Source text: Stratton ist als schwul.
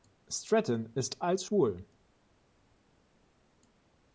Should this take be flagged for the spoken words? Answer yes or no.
no